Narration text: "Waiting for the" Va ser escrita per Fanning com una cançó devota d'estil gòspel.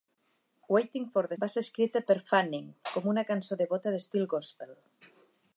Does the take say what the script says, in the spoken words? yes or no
yes